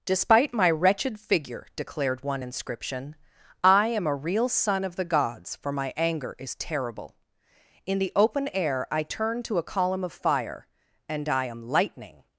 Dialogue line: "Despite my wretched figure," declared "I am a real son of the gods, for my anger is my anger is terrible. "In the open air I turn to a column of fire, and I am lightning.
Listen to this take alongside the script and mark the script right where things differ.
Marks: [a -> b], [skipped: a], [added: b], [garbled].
"Despite my wretched figure," declared [added: one inscription] "I am a real son of the gods, for my anger is [skipped: my anger is] terrible. "In the open air I turn to a column of fire, and I am lightning.